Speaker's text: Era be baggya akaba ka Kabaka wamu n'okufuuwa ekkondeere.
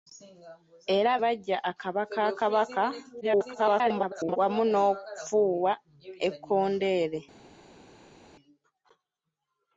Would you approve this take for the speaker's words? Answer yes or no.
no